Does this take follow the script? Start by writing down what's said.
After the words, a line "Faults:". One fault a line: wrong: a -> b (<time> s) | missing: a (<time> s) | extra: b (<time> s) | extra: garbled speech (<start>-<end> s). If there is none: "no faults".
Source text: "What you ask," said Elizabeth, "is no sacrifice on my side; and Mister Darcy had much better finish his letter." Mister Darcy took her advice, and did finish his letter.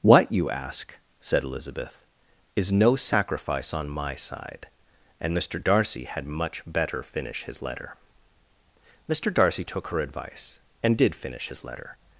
"What you ask," said Elizabeth, "is no sacrifice on my side; and Mister Darcy had much better finish his letter." Mister Darcy took her advice, and did finish his letter.
Faults:
no faults